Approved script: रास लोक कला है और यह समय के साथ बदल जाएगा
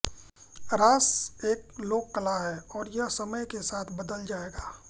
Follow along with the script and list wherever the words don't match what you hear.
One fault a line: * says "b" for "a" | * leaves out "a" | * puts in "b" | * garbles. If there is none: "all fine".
* puts in "एक"